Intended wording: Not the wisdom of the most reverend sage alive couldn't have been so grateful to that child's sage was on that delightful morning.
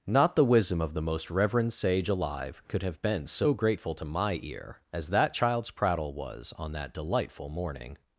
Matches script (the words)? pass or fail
fail